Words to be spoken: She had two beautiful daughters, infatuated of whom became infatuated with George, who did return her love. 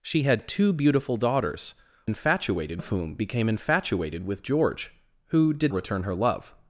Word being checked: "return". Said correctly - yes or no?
yes